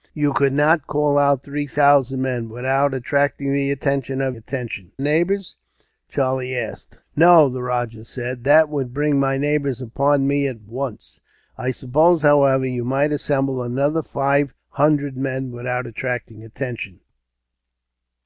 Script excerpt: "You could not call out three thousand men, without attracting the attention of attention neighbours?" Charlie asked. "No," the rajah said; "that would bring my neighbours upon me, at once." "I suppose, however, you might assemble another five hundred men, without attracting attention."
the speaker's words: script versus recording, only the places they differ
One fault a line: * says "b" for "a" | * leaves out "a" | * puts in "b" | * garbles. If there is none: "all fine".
all fine